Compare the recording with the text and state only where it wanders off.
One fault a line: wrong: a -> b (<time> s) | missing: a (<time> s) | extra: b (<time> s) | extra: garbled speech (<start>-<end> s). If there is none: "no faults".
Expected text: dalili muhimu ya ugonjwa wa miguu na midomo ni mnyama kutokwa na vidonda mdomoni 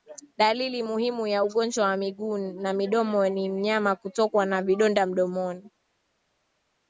no faults